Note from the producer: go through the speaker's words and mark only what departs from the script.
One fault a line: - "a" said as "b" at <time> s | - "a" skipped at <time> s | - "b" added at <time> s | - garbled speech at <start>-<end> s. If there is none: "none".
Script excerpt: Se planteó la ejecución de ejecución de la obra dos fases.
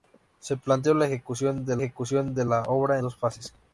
none